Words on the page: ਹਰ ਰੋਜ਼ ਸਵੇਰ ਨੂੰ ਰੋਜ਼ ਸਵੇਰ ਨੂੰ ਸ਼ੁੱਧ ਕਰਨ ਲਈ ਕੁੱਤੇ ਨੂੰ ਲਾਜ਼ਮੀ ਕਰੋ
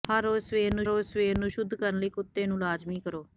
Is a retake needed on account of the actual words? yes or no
no